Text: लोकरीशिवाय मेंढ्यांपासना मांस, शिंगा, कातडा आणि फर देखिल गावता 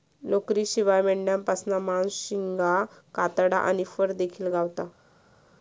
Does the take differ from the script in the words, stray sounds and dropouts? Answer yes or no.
no